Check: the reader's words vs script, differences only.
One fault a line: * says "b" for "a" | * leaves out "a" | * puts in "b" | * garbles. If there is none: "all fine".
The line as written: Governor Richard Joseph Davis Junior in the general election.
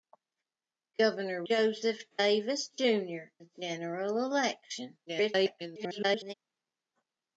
* leaves out "Richard"
* leaves out "in"
* garbles